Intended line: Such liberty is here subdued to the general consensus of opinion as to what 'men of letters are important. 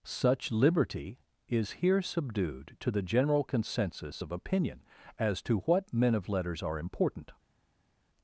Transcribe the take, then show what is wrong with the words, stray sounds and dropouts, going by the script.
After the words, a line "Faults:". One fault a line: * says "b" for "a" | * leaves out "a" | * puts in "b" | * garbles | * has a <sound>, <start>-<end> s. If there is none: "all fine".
Such liberty is here subdued to the general consensus of opinion as to what 'men of letters are important.
Faults:
all fine